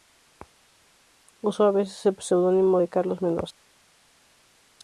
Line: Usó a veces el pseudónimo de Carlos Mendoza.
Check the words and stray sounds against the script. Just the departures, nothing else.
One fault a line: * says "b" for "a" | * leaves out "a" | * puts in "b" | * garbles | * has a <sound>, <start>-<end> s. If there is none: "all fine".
all fine